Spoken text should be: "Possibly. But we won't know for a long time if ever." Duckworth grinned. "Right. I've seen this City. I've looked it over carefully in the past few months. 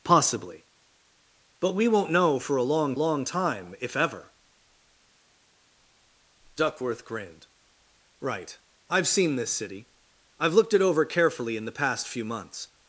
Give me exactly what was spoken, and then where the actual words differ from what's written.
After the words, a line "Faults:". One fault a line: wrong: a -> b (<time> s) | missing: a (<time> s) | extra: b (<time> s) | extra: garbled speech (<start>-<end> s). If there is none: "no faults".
"Possibly. But we won't know for a long long time if ever." Duckworth grinned. "Right. I've seen this City. I've looked it over carefully in the past few months.
Faults:
extra: long (2.9 s)